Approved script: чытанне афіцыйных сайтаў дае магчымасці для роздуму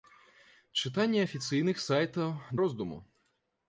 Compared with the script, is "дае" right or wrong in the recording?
wrong